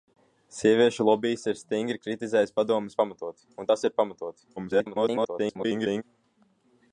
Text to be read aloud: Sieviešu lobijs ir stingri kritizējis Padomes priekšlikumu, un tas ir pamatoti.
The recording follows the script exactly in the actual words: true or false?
false